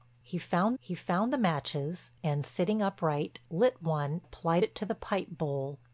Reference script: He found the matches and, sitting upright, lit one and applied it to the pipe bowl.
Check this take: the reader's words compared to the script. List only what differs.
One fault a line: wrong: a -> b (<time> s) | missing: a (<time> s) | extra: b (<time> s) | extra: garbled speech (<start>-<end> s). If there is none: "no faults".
extra: he found (0.8 s)
missing: and (4.2 s)